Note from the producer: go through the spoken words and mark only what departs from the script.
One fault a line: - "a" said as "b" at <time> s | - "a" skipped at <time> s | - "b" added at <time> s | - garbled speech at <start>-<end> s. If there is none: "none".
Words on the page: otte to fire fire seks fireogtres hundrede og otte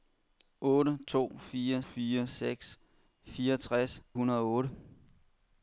none